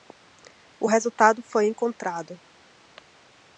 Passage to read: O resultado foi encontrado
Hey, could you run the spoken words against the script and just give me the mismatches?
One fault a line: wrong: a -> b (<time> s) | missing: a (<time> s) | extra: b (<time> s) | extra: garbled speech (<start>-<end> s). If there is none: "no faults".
no faults